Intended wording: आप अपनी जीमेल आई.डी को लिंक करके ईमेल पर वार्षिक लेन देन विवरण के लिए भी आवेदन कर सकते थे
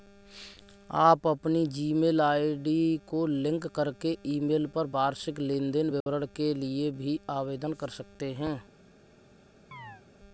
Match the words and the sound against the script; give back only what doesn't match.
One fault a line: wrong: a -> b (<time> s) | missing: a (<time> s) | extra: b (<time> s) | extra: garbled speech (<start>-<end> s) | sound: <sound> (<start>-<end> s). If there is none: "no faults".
sound: dropout (6.0-6.1 s)
wrong: थे -> हैं (8.3 s)
sound: chirp (9.7-10.0 s)